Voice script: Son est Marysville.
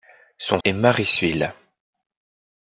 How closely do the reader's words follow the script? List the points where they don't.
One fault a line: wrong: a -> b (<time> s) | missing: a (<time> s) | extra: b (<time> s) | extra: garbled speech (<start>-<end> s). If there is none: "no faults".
no faults